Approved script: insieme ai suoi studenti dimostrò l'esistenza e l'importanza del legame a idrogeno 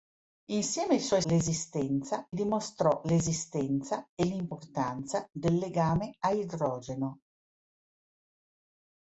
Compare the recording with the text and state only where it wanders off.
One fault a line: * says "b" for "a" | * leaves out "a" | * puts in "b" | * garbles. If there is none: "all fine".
* says "l'esistenza" for "studenti"